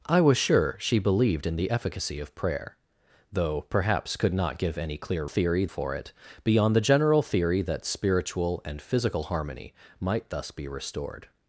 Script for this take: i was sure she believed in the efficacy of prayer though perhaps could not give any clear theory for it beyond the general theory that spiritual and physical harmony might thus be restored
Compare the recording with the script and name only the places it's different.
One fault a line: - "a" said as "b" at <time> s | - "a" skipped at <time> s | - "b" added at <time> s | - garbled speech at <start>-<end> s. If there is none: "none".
none